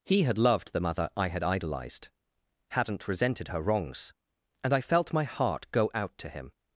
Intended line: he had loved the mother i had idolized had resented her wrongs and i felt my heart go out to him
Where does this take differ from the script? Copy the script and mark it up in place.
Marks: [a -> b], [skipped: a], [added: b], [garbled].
he had loved the mother i had idolized [had -> hadn't] resented her wrongs and i felt my heart go out to him